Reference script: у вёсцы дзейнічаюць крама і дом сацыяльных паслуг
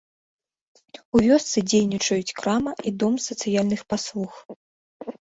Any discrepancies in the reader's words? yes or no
no